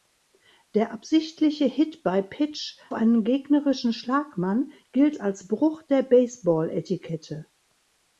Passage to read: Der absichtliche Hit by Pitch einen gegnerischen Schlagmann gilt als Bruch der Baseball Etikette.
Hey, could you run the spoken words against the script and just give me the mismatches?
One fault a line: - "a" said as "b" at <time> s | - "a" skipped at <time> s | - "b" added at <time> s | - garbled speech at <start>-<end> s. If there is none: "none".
none